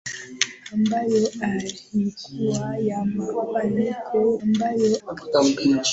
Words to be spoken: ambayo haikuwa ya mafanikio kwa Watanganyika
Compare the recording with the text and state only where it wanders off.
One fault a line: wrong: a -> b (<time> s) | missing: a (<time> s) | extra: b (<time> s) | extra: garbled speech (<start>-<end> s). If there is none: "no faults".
wrong: kwa -> ambayo (4.4 s)